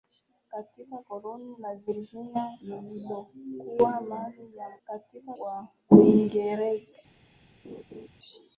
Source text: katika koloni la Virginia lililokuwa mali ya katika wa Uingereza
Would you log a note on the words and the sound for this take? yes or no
yes